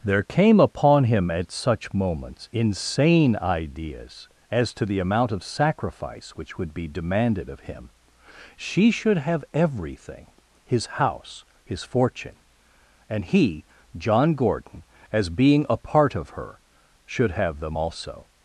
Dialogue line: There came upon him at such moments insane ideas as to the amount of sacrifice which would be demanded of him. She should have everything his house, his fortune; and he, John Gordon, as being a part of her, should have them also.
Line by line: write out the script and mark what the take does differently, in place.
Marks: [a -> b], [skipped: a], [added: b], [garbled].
There came upon him at such moments insane ideas as to the amount of sacrifice which would be demanded of him. She should have everything his house, his fortune; and he, John Gordon, as being a part of her, should have them also.